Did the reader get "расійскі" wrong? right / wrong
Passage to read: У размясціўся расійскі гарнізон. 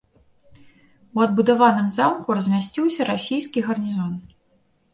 right